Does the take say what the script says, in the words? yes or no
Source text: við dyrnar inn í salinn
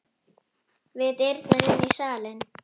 yes